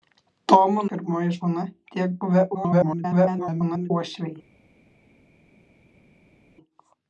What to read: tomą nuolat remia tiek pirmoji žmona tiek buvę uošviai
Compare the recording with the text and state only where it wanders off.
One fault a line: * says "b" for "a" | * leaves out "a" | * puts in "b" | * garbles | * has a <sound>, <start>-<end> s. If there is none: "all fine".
* leaves out "nuolat remia tiek"
* garbles